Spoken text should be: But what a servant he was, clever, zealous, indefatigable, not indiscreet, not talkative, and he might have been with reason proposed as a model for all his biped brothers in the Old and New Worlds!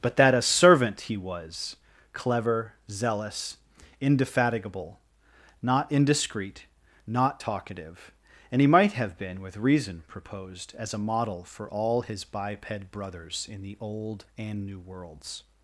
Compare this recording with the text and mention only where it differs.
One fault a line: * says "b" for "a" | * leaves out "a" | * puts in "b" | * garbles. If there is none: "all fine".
* says "that" for "what"